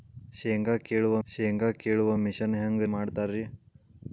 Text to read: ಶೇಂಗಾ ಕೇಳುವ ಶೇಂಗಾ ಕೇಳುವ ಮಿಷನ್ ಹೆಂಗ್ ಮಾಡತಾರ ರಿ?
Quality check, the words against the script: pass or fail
pass